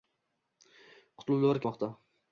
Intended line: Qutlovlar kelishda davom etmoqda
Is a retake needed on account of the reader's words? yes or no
yes